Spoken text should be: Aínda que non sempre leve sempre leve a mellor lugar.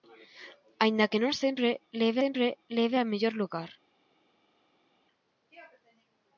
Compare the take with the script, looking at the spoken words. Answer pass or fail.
pass